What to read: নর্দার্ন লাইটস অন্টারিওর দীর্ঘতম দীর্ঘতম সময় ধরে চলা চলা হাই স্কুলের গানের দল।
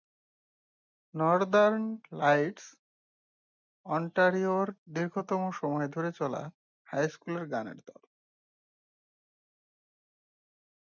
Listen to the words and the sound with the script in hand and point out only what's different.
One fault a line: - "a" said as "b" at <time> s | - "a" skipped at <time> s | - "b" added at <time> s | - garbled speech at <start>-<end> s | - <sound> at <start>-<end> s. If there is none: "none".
- "দীর্ঘতম" skipped at 5.4 s
- "চলা" skipped at 6.4 s